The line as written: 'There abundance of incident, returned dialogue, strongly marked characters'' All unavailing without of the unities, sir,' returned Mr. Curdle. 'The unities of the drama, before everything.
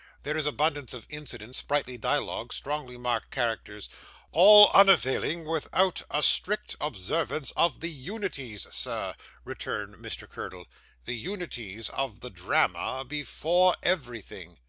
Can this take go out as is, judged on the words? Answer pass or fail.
fail